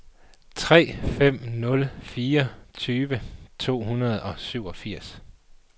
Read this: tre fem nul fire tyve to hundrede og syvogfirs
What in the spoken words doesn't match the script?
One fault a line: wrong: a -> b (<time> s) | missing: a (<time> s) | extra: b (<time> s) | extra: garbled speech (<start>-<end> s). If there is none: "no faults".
no faults